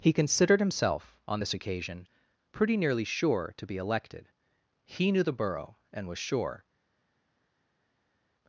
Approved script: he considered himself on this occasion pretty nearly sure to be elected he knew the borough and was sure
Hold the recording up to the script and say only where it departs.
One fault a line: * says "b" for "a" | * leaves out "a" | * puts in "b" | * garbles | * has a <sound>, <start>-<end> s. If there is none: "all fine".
all fine